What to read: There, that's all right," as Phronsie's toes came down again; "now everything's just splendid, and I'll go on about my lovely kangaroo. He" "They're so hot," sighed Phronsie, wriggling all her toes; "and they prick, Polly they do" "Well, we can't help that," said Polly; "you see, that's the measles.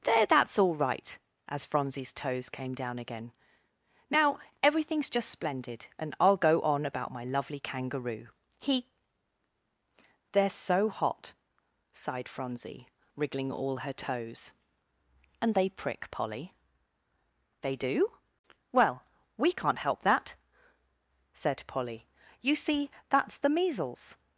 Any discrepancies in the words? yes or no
no